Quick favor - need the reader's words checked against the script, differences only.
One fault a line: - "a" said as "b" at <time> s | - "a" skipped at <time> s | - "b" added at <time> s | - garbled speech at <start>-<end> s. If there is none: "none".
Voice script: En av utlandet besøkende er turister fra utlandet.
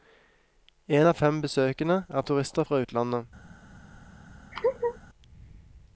- "utlandet" said as "fem" at 1.2 s